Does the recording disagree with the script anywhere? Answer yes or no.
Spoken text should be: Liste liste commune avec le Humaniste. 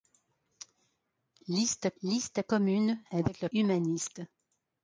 no